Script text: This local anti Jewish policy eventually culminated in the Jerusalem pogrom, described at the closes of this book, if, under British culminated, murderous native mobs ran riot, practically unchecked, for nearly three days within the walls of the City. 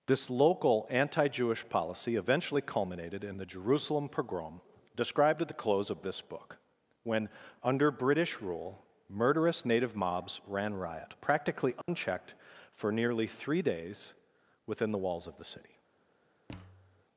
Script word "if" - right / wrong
wrong